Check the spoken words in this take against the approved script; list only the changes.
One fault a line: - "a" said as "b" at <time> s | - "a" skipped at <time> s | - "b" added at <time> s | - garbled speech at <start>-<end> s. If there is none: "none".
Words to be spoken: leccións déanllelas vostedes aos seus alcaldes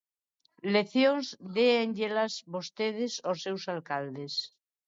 none